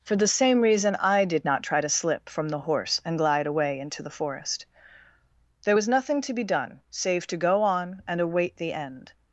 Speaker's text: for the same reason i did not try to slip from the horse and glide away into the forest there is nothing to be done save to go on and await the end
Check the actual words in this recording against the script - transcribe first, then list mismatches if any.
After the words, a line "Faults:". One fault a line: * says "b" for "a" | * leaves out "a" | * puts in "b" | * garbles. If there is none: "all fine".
for the same reason i did not try to slip from the horse and glide away into the forest there was nothing to be done save to go on and await the end
Faults:
* says "was" for "is"